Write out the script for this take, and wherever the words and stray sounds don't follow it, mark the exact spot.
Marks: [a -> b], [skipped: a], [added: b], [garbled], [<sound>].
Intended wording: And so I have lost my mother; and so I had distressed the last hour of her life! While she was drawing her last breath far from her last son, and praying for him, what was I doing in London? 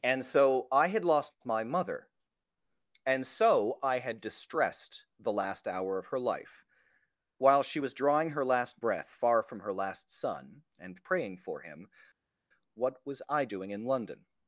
And so I [have -> had] lost my mother; and so I had distressed the last hour of her life! While she was drawing her last breath far from her last son, and praying for him, what was I doing in London?